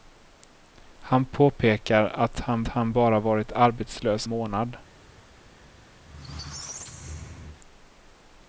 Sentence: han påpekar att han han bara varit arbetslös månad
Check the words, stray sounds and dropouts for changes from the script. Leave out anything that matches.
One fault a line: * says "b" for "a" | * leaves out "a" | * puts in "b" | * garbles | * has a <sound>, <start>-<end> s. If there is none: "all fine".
* has a squeak, 6.0-7.6 s